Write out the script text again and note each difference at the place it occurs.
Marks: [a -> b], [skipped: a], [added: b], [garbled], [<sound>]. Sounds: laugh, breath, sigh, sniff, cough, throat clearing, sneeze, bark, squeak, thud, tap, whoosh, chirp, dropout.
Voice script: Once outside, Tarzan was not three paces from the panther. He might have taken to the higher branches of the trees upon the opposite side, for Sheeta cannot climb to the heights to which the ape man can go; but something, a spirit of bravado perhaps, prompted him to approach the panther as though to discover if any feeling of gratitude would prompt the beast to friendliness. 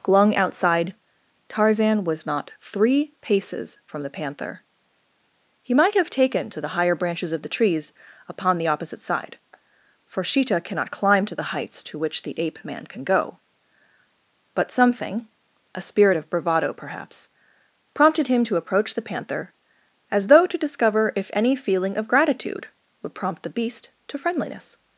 [Once -> Glung] outside, Tarzan was not three paces from the panther. He might have taken to the higher branches of the trees upon the opposite side, for Sheeta cannot climb to the heights to which the ape man can go; but something, a spirit of bravado perhaps, prompted him to approach the panther as though to discover if any feeling of gratitude would prompt the beast to friendliness.